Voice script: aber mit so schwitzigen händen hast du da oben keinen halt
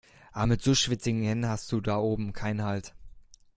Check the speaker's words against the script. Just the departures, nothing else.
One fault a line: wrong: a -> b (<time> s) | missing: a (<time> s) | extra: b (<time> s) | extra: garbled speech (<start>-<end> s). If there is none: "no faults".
no faults